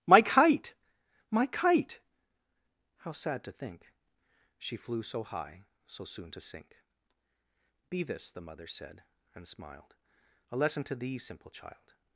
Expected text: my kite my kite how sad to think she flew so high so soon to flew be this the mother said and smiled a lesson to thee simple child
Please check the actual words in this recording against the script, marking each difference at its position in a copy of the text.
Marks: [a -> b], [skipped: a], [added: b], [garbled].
my kite my kite how sad to think she flew so high so soon to [flew -> sink] be this the mother said and smiled a lesson to thee simple child